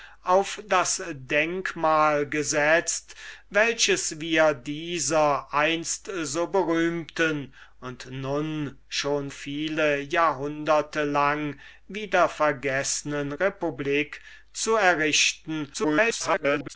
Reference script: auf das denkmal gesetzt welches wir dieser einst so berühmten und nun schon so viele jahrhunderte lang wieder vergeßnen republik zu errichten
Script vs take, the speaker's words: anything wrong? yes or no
yes